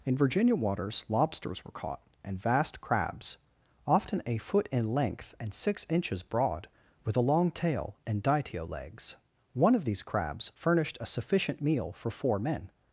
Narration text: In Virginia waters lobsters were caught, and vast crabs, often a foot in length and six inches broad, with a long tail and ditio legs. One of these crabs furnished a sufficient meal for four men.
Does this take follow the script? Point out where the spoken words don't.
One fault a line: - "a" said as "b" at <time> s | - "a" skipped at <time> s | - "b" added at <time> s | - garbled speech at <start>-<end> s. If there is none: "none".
none